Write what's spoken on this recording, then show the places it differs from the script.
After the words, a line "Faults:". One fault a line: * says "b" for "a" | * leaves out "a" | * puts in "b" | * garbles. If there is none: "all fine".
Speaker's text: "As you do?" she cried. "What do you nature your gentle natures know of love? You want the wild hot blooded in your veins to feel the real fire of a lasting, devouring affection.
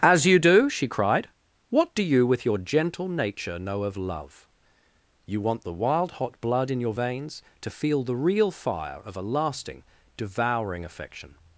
"As you do?" she cried. "What do you with your gentle nature know of love? You want the wild hot blood in your veins to feel the real fire of a lasting, devouring affection.
Faults:
* says "with" for "nature"
* says "nature" for "natures"
* says "blood" for "blooded"